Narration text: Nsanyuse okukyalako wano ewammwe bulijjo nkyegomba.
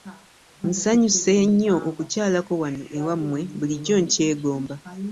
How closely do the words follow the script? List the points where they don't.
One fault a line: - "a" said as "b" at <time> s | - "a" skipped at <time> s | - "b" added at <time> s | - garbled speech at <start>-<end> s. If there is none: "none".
- "nnyo" added at 1.5 s